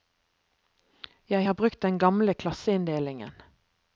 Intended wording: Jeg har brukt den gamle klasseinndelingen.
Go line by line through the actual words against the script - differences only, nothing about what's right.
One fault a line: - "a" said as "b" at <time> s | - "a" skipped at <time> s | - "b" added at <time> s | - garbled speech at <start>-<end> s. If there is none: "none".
none